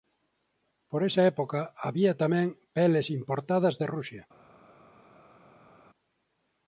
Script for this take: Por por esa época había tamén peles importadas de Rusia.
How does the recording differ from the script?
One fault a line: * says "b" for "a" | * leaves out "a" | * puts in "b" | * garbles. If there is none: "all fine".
* leaves out "por"